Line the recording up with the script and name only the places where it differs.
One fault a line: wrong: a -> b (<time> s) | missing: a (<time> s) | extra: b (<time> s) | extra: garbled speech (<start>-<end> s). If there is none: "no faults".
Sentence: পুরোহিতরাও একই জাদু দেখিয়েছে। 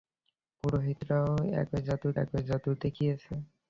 extra: একই জাদু (2.2 s)